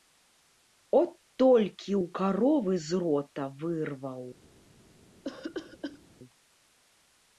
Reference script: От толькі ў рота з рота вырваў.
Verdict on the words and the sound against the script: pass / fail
fail